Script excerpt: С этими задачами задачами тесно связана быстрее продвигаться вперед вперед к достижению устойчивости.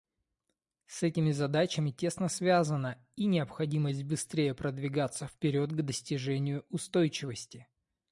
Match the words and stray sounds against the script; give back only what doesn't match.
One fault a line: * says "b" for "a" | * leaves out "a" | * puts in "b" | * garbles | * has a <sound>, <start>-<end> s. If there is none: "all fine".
* leaves out "задачами"
* puts in "и необходимость"
* leaves out "вперед"